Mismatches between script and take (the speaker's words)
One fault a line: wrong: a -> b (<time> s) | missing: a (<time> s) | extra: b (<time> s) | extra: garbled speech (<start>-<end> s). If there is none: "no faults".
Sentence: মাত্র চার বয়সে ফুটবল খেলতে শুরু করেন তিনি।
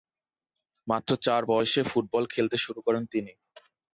no faults